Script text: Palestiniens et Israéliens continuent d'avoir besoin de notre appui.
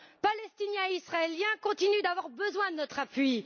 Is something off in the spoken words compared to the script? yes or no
no